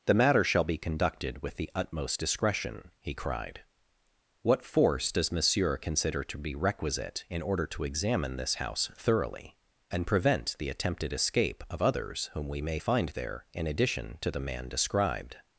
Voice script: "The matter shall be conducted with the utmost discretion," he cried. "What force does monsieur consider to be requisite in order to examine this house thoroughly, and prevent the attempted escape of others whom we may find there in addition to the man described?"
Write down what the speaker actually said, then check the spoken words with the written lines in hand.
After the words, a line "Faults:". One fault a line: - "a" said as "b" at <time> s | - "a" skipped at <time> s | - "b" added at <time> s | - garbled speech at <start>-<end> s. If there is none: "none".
"The matter shall be conducted with the utmost discretion," he cried. "What force does monsieur consider to be requisite in order to examine this house thoroughly, and prevent the attempted escape of others whom we may find there in addition to the man described?"
Faults:
none